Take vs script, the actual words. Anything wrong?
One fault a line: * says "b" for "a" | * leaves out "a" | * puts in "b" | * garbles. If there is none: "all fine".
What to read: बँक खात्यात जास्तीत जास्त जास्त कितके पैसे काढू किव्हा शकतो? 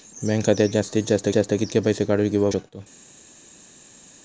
all fine